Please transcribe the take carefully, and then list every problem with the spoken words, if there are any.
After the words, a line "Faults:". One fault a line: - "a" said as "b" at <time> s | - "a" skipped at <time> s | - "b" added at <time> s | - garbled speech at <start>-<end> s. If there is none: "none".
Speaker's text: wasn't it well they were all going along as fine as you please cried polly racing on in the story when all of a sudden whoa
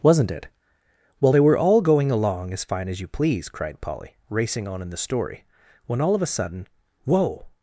wasn't it well they were all going along as fine as you please cried polly racing on in the story when all of a sudden whoa
Faults:
none